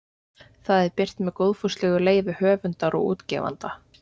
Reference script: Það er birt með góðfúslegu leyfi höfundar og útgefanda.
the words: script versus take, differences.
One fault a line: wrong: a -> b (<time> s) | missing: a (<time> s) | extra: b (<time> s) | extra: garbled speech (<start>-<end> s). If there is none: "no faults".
no faults